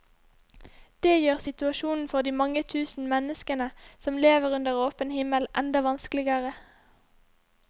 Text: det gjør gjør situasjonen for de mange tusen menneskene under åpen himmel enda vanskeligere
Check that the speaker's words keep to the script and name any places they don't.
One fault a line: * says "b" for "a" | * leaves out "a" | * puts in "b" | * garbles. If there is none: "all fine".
* leaves out "gjør"
* puts in "som lever"